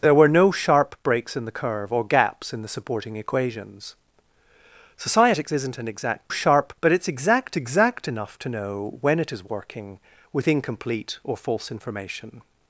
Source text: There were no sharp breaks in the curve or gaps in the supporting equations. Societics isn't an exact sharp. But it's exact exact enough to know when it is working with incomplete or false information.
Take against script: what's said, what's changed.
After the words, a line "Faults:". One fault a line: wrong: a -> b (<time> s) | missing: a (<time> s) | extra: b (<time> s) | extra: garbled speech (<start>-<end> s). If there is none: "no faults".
There were no sharp breaks in the curve or gaps in the supporting equations. Societics isn't an exact sharp. But it's exact exact enough to know when it is working with incomplete or false information.
Faults:
no faults